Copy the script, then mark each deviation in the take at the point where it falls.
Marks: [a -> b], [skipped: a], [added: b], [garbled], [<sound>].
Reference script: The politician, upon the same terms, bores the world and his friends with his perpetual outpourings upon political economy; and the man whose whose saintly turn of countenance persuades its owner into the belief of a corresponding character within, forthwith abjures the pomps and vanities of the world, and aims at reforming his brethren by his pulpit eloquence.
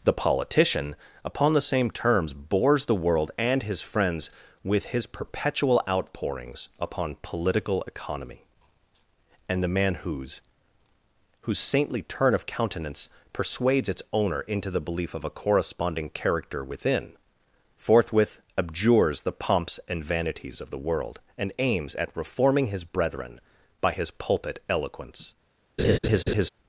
The politician, upon the same terms, bores the world and his friends with his perpetual outpourings upon political economy; and the man whose whose saintly turn of countenance persuades its owner into the belief of a corresponding character within, forthwith abjures the pomps and vanities of the world, and aims at reforming his brethren by his pulpit eloquence. [laugh]